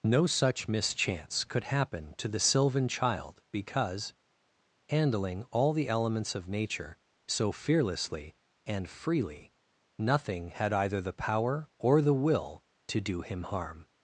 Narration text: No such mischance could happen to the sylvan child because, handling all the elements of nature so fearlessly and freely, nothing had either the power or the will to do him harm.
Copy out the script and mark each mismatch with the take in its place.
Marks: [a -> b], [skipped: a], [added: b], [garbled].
No such mischance could happen to the sylvan child because, handling all the elements of nature so fearlessly and freely, nothing had either the power or the will to do him harm.